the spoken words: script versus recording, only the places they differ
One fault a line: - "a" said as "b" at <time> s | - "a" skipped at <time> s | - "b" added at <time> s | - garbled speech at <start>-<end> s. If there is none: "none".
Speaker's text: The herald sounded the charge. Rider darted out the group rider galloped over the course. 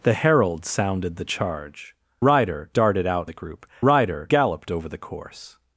none